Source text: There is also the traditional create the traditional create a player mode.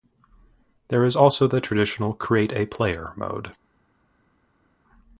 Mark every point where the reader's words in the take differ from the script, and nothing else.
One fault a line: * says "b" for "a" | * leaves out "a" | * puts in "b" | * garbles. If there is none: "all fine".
* leaves out "the traditional create"